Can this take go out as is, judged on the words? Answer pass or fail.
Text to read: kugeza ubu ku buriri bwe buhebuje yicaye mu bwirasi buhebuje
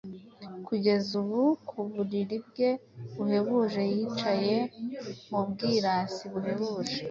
pass